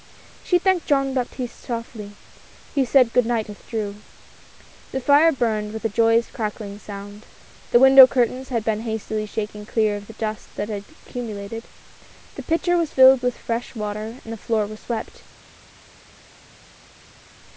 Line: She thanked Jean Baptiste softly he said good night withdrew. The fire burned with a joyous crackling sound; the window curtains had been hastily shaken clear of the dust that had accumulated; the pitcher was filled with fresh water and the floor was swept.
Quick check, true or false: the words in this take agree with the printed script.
true